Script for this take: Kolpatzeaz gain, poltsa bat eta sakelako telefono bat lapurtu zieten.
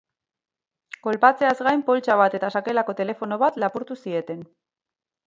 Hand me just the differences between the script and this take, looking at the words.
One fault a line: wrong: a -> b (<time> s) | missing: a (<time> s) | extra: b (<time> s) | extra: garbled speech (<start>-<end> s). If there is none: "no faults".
no faults